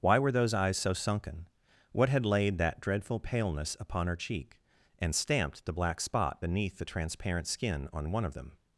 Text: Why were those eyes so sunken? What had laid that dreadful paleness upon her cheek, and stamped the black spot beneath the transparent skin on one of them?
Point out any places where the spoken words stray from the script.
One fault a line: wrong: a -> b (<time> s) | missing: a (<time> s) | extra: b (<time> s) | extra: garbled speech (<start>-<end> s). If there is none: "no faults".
no faults